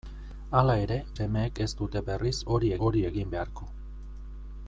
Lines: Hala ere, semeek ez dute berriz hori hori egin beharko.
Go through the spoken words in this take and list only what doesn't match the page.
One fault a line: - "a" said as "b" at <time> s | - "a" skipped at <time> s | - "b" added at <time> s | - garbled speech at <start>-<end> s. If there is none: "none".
none